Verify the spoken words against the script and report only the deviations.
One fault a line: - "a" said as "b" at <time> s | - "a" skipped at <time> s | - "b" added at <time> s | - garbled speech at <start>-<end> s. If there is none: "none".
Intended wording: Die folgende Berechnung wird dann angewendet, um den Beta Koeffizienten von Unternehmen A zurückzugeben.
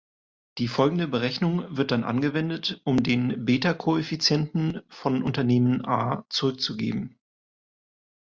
none